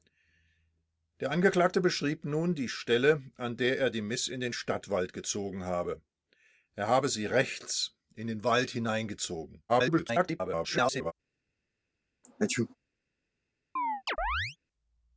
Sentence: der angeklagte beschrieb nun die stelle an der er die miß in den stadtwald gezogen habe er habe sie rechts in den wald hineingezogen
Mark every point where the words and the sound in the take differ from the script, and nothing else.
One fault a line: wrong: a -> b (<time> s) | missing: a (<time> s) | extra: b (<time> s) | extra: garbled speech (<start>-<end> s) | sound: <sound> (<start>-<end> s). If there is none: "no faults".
extra: garbled speech (9.7-11.1 s)
sound: sneeze (12.2-12.8 s)
sound: chirp (13.8-14.6 s)